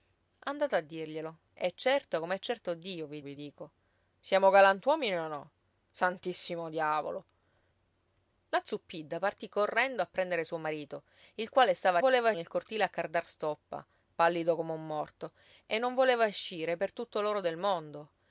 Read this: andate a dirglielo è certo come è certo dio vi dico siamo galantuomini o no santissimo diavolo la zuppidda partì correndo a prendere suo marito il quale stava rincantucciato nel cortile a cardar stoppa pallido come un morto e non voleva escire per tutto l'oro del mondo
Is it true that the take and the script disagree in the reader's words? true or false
true